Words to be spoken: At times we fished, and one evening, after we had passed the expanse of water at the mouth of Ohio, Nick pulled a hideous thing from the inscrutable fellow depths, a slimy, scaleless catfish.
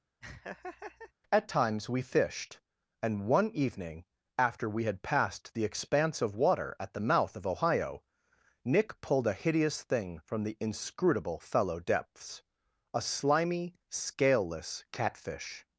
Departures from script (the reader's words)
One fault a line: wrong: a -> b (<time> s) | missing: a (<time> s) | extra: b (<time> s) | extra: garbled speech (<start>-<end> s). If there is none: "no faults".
no faults